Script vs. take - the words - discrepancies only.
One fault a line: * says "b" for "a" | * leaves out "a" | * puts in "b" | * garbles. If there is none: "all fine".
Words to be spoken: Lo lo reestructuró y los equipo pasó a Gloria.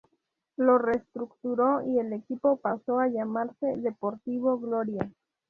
* leaves out "lo"
* says "el" for "los"
* puts in "llamarse Deportivo"